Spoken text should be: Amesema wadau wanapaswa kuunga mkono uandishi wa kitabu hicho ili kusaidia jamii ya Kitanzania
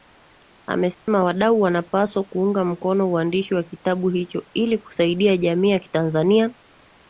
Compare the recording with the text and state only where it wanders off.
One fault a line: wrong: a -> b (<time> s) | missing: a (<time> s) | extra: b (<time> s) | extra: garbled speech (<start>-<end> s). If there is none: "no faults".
no faults